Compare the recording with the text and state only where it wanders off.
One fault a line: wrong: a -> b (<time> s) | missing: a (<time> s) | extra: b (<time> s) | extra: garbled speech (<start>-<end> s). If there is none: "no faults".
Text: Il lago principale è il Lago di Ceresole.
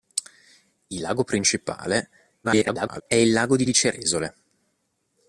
extra: garbled speech (2.4-3.0 s)
extra: di (3.6 s)